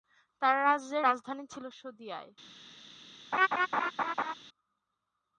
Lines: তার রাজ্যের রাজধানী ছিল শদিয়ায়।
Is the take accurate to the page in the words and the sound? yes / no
no